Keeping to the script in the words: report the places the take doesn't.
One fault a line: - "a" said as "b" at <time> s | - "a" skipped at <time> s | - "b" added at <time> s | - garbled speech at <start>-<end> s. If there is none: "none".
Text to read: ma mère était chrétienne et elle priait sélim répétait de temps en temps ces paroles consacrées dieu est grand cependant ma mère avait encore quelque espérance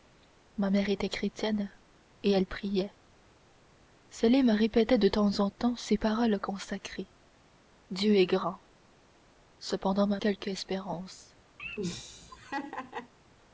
- "mère avait encore" skipped at 10.2 s